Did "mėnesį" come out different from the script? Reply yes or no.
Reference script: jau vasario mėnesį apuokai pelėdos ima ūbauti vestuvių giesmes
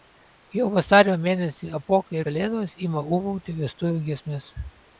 no